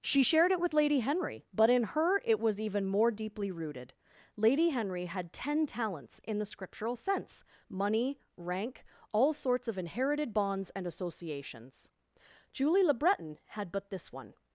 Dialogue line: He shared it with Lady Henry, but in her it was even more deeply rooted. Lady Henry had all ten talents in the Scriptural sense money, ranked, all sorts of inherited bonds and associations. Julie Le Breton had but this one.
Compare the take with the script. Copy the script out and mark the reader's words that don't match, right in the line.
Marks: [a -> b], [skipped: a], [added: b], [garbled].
[He -> She] shared it with Lady Henry, but in her it was even more deeply rooted. Lady Henry had [skipped: all] ten talents in the Scriptural sense money, [ranked, -> rank] all sorts of inherited bonds and associations. Julie Le Breton had but this one.